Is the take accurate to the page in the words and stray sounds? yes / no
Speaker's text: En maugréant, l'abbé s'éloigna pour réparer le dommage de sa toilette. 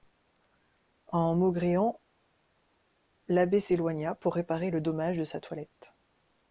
yes